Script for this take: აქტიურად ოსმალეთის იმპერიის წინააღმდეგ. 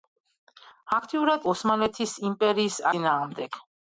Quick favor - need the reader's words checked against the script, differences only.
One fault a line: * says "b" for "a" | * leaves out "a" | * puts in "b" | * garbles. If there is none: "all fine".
all fine